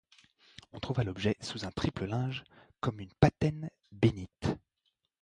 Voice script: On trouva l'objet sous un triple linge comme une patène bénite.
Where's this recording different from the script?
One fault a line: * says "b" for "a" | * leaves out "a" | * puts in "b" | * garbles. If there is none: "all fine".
all fine